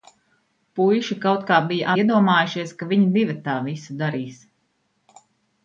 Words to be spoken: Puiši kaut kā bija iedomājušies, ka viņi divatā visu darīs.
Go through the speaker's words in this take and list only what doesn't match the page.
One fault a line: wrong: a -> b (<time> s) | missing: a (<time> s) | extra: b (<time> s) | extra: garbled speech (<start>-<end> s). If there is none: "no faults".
no faults